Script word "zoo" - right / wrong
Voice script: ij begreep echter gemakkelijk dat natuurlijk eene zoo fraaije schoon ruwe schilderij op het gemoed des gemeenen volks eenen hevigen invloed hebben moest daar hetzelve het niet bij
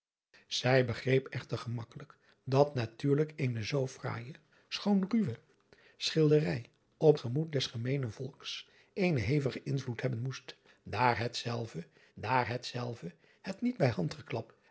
right